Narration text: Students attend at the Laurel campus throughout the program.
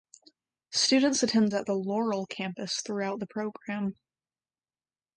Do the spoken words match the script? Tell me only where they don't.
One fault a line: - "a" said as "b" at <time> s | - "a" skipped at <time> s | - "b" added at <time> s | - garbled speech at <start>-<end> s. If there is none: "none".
none